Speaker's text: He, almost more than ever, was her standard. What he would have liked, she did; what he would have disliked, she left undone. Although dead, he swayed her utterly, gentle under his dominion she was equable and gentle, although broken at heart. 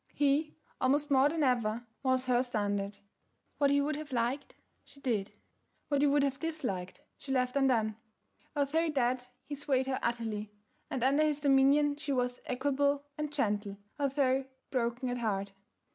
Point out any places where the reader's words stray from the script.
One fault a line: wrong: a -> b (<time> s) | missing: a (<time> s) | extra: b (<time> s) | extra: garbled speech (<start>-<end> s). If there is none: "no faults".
wrong: gentle -> and (10.9 s)